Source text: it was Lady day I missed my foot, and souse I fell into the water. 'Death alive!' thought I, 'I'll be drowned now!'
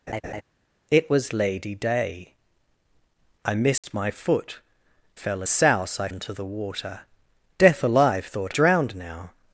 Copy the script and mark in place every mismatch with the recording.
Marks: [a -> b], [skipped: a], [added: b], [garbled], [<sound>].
[laugh] it was Lady day I missed [dropout] my foot, [and -> fell] souse I [skipped: fell] into the water. 'Death alive!' thought [skipped: I, 'I'll be] drowned now!'